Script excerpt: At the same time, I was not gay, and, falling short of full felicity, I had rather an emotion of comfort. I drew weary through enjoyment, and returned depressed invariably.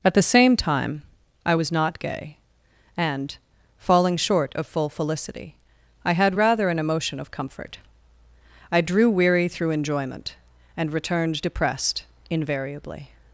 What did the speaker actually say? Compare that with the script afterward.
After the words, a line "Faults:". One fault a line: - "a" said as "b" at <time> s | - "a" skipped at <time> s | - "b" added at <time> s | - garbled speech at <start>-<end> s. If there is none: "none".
At the same time, I was not gay, and, falling short of full felicity, I had rather an emotion of comfort. I drew weary through enjoyment, and returned depressed invariably.
Faults:
none